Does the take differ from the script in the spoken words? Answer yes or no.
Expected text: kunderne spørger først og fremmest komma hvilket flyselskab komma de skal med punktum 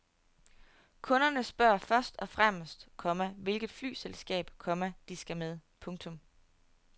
no